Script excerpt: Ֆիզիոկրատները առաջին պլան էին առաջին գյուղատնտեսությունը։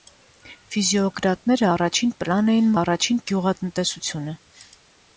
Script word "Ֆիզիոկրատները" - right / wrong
right